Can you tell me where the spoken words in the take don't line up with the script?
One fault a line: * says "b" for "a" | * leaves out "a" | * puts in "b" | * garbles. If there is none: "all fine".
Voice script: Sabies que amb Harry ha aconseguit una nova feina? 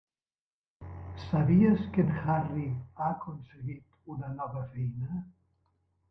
* says "en" for "amb"